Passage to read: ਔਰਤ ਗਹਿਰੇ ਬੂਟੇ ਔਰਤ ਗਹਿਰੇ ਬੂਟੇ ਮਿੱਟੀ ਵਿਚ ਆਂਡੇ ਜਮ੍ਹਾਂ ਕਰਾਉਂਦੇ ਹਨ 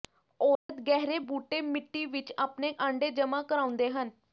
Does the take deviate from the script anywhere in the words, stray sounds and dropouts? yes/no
yes